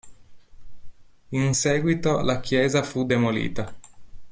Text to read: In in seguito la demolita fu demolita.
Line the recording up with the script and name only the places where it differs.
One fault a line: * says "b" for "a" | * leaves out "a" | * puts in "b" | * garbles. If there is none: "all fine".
* leaves out "in"
* says "chiesa" for "demolita"